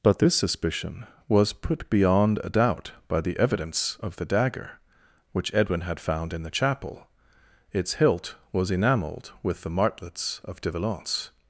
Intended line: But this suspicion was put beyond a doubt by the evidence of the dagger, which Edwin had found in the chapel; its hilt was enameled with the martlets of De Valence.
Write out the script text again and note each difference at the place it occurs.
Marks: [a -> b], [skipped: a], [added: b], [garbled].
But this suspicion was put beyond a doubt by the evidence of the dagger, which Edwin had found in the chapel; its hilt was enameled with the martlets of De Valence.